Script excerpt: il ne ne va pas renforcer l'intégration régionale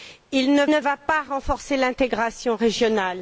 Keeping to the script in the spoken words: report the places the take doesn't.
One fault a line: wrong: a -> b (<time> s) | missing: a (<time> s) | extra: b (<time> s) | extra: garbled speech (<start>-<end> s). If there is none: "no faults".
no faults